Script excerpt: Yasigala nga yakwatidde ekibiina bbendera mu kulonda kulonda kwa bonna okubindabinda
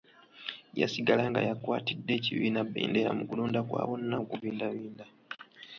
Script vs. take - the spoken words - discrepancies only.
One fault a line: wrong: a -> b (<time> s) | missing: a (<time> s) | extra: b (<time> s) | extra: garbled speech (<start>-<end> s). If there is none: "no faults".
missing: kulonda (3.6 s)